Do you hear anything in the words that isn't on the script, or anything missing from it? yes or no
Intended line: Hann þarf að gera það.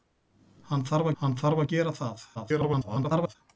yes